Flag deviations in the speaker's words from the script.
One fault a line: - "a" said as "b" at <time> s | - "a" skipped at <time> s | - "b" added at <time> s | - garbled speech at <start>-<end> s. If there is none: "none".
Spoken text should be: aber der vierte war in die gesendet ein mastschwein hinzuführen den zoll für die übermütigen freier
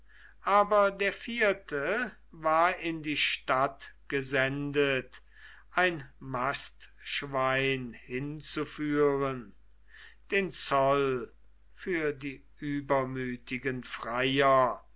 - "stadt" added at 3.2 s